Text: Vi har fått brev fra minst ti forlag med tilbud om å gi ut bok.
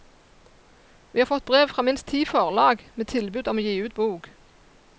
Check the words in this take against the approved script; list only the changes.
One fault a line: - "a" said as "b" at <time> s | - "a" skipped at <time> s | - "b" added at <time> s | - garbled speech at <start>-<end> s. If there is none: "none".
none